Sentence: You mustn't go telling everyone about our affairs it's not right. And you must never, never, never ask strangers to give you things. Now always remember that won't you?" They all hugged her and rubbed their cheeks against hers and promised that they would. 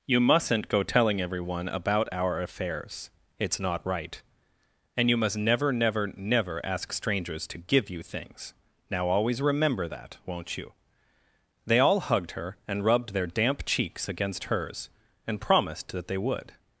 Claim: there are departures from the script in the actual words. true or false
true